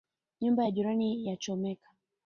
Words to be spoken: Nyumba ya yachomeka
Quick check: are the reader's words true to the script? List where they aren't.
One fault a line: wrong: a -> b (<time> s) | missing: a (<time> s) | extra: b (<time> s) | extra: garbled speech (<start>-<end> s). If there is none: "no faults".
extra: jirani (0.7 s)